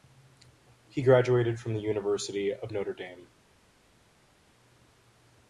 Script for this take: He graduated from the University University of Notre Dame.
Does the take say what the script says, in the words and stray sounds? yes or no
no